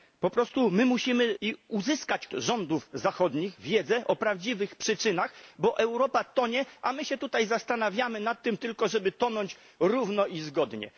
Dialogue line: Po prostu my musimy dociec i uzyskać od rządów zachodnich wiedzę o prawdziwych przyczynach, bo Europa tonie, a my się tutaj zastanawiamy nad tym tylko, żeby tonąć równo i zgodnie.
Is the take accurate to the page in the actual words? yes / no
no